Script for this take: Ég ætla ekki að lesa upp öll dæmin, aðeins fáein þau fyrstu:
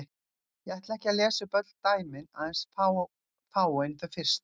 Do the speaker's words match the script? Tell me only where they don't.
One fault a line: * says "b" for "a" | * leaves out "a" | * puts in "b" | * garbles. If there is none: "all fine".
all fine